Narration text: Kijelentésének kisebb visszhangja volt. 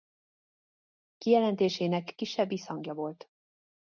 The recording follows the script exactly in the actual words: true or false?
true